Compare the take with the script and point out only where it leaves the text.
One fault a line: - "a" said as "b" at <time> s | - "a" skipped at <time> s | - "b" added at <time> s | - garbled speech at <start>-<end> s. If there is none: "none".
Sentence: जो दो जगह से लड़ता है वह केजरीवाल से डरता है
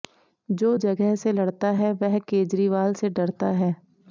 - "दो" skipped at 0.8 s